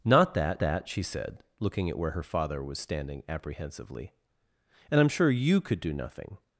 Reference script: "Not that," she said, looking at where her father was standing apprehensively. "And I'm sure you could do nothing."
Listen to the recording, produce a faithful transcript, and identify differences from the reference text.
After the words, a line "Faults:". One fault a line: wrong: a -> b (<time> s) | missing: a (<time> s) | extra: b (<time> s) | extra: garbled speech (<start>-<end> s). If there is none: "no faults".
"Not that that," she said, looking at where her father was standing apprehensively. "And I'm sure you could do nothing."
Faults:
extra: that (0.6 s)